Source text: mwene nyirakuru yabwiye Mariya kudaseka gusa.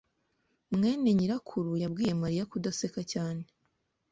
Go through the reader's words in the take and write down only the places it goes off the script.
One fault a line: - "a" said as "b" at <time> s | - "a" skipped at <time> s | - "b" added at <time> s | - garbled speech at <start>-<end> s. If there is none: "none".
- "gusa" said as "cyane" at 3.1 s